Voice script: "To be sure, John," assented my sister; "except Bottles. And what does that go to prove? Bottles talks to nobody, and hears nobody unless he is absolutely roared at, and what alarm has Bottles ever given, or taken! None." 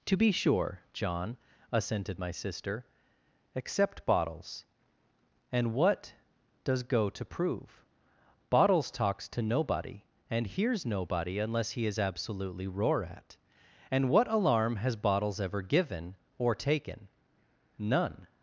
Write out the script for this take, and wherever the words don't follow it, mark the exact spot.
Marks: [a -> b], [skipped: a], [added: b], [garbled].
"To be sure, John," assented my sister; "except Bottles. And what does [skipped: that] go to prove? Bottles talks to nobody, and hears nobody unless he is absolutely [roared -> roar] at, and what alarm has Bottles ever given, or taken! None."